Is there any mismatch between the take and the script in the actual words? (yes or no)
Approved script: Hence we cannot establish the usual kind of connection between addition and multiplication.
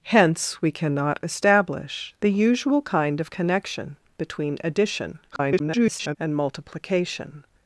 yes